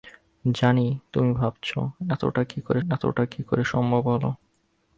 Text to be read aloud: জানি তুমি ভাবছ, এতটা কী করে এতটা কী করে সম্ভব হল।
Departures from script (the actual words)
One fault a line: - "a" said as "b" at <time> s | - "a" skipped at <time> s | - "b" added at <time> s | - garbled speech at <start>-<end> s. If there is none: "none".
none